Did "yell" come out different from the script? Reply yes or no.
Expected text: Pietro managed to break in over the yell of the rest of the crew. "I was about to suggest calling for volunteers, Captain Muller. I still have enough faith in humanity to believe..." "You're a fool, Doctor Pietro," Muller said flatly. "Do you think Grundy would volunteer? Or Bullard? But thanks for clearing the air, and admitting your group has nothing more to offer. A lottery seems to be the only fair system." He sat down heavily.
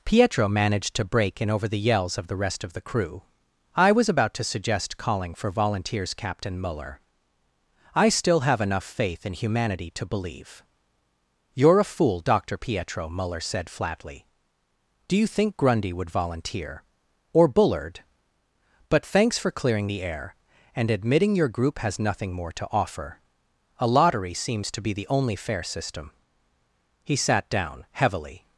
yes